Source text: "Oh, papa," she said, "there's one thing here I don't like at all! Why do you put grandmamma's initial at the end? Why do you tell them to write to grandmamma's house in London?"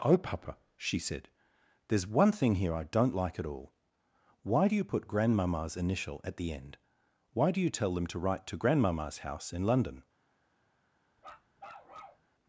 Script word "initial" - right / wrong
right